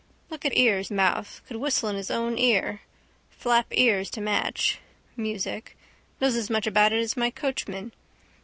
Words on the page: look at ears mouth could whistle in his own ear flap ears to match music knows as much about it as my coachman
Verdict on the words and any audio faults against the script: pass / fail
pass